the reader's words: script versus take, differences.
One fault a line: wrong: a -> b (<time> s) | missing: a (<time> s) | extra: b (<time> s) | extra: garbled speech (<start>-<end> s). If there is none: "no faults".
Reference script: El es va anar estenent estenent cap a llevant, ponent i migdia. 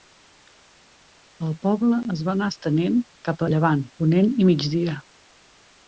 extra: poble (1.6 s)
missing: estenent (3.0 s)